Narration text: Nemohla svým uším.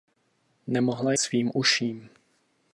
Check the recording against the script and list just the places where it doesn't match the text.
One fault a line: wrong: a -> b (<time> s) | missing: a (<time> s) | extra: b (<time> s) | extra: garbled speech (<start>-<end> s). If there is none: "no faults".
no faults